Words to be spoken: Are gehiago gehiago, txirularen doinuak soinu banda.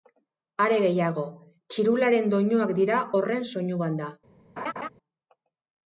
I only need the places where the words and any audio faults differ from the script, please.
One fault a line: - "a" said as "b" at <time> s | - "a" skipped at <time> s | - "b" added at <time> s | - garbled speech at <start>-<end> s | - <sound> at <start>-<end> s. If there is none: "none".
- "gehiago" skipped at 1.2 s
- "dira horren" added at 2.8 s
- laugh at 4.6-4.9 s